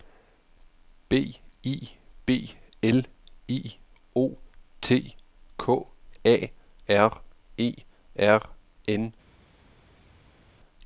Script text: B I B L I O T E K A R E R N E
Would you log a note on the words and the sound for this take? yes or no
yes